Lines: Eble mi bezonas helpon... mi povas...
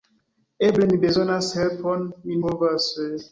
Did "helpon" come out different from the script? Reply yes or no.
no